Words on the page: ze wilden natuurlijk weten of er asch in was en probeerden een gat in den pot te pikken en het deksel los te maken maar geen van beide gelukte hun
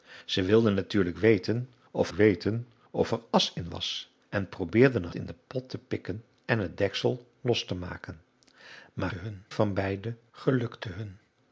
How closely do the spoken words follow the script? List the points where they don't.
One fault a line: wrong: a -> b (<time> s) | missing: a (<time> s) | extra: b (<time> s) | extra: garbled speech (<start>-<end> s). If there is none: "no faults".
extra: weten of (2.1 s)
missing: gat (5.1 s)
wrong: geen -> hun (9.1 s)